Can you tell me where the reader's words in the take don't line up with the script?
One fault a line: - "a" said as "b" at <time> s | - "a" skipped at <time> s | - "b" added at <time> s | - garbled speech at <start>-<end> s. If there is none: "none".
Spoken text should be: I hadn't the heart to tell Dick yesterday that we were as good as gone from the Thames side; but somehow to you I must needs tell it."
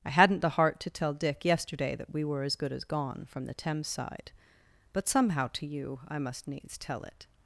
none